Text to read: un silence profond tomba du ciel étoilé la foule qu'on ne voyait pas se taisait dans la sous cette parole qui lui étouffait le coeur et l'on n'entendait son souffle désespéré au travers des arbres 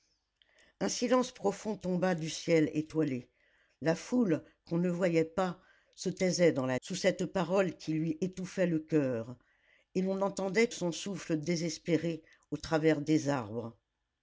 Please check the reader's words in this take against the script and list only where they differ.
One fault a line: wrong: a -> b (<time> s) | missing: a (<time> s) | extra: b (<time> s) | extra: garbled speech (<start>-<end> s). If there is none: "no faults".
no faults